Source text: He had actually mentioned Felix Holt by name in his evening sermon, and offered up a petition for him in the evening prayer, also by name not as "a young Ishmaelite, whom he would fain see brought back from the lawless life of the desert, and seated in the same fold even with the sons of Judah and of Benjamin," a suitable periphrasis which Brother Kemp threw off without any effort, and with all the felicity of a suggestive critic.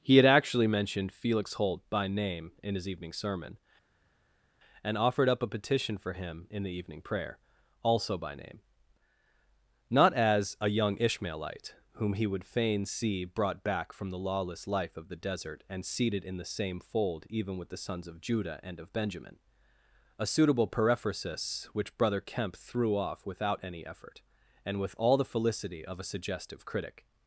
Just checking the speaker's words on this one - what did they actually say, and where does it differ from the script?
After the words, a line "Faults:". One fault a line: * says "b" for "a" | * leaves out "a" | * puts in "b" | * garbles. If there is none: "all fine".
He had actually mentioned Felix Holt by name in his evening sermon, and offered up a petition for him in the evening prayer, also by name not as "a young Ishmaelite, whom he would fain see brought back from the lawless life of the desert, and seated in the same fold even with the sons of Judah and of Benjamin," a suitable periphrasis which Brother Kemp threw off without any effort, and with all the felicity of a suggestive critic.
Faults:
all fine